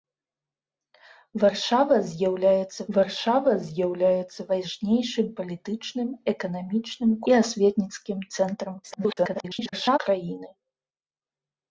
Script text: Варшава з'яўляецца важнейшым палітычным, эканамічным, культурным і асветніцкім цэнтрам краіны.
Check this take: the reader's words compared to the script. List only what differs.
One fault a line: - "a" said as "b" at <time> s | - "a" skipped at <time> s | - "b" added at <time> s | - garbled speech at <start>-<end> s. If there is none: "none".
- "варшава з'яўляецца" added at 3.0 s
- "культурным" skipped at 7.1 s
- garbled speech at 8.8-10.0 s